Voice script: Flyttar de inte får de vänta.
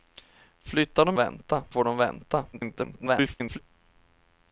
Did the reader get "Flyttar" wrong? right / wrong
right